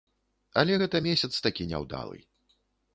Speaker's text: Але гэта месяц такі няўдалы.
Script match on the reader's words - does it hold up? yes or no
yes